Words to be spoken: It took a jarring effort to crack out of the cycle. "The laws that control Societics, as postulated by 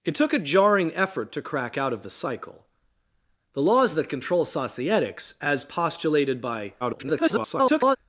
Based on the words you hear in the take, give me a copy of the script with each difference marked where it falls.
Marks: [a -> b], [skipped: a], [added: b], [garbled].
It took a jarring effort to crack out of the cycle. "The laws that control Societics, as postulated by [garbled]